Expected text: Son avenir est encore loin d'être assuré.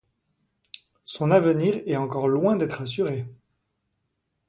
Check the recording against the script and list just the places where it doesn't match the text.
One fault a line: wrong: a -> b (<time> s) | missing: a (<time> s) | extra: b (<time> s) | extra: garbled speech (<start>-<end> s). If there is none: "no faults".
no faults